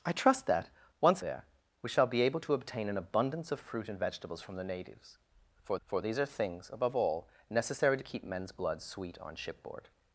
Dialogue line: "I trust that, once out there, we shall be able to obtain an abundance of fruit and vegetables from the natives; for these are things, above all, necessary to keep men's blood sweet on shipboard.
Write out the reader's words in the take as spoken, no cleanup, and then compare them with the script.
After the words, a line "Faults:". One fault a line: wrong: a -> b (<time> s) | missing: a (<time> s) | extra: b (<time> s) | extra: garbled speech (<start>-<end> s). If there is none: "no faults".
"I trust that, once there, we shall be able to obtain an abundance of fruit and vegetables from the natives; for for these are things, above all, necessary to keep men's blood sweet on shipboard.
Faults:
missing: out (1.2 s)
extra: for (5.8 s)